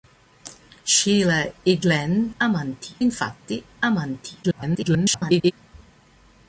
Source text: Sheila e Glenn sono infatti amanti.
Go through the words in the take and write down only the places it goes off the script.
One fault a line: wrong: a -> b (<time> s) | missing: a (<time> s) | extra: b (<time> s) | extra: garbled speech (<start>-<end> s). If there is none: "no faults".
wrong: sono -> amanti (2.4 s)
extra: garbled speech (4.4-5.5 s)